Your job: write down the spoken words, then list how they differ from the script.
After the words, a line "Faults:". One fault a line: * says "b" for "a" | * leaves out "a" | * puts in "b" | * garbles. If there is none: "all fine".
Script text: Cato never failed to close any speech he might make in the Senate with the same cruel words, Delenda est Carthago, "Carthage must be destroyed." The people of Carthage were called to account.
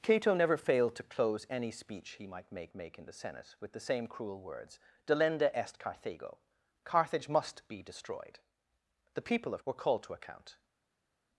Cato never failed to close any speech he might make make in the Senate with the same cruel words, Delenda est Carthago, "Carthage must be destroyed." The people of Were called to account.
Faults:
* puts in "make"
* leaves out "Carthage"